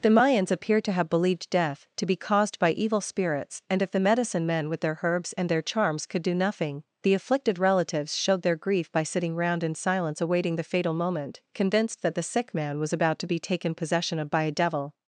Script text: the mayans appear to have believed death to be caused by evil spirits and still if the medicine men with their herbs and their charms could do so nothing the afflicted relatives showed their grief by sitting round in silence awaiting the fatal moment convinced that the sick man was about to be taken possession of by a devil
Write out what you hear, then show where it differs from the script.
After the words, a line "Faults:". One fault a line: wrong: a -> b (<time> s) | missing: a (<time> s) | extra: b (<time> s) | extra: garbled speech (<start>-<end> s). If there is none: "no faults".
the mayans appear to have believed death to be caused by evil spirits and if the medicine men with their herbs and their charms could do nothing the afflicted relatives showed their grief by sitting round in silence awaiting the fatal moment convinced that the sick man was about to be taken possession of by a devil
Faults:
missing: still (3.8 s)
missing: so (6.3 s)